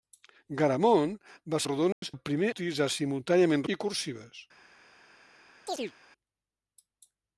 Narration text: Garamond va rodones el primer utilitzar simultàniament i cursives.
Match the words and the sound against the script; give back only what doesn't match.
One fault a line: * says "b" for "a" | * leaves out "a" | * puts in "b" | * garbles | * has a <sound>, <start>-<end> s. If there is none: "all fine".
* has a dropout, 1.9-2.0 s
* has a chirp, 5.7-5.9 s